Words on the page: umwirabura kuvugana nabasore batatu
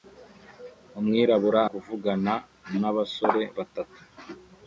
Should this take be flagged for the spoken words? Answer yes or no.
no